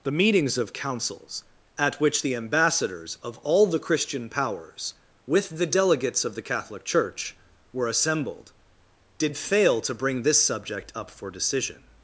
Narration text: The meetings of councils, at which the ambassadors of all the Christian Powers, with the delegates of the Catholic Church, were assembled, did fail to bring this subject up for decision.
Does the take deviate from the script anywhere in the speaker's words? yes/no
no